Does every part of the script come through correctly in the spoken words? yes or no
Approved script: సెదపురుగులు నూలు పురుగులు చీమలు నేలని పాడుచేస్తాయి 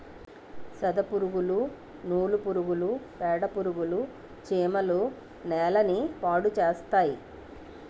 no